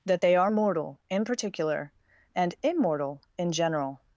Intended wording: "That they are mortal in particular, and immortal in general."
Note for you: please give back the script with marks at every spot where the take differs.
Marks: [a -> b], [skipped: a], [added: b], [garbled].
"That they are mortal in particular, and immortal in general."